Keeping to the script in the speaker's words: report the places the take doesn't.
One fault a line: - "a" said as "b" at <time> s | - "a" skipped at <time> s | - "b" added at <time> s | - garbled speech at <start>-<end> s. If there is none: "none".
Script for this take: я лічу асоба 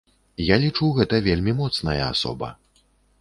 - "гэта вельмі моцная" added at 1.0 s